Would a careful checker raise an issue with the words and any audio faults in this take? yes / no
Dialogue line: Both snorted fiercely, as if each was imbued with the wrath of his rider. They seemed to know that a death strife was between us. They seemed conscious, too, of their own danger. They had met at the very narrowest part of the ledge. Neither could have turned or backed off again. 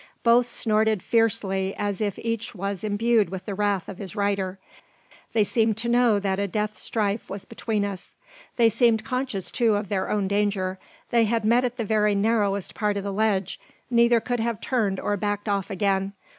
no